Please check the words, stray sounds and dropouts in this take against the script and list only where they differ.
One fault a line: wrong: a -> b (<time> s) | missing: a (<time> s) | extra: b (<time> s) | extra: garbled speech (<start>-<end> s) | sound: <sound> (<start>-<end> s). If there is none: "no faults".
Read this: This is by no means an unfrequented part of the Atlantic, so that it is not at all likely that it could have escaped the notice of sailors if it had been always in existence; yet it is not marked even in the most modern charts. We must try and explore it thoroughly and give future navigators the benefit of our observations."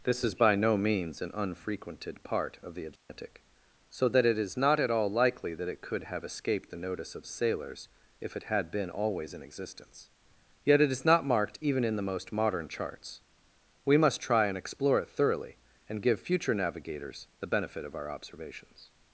sound: dropout (3.0-3.1 s)